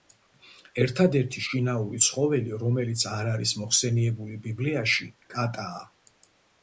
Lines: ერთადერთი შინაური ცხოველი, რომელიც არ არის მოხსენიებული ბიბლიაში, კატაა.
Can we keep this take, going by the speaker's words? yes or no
yes